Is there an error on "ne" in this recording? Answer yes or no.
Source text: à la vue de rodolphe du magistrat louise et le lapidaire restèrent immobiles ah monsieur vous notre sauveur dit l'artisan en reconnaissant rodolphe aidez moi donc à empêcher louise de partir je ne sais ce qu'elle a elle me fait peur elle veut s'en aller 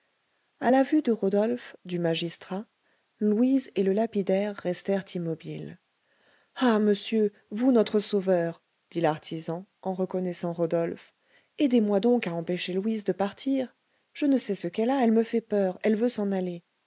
no